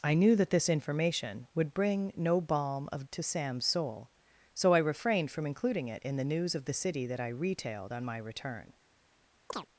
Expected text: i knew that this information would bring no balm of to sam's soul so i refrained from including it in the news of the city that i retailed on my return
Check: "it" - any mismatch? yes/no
no